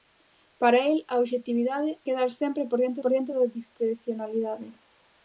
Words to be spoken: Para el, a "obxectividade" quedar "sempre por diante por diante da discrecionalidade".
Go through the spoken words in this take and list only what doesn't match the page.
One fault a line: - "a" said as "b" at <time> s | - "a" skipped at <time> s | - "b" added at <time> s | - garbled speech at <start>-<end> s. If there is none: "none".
none